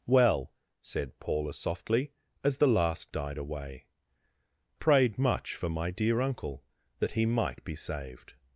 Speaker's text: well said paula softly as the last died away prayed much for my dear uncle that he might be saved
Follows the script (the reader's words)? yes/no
yes